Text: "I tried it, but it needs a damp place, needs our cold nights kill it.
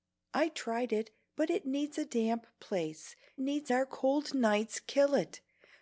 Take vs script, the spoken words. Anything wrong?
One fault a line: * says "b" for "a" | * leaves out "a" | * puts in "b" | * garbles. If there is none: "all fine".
all fine